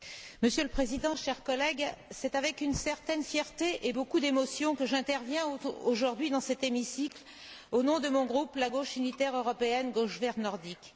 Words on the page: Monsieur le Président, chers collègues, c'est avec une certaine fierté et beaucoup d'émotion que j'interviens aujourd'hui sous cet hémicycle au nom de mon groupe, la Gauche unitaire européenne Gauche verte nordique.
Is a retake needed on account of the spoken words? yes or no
yes